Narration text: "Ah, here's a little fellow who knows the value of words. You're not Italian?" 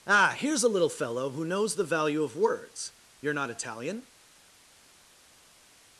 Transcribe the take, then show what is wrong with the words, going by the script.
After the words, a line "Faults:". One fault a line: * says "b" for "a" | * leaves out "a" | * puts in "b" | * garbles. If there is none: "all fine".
"Ah, here's a little fellow who knows the value of words. You're not Italian?"
Faults:
all fine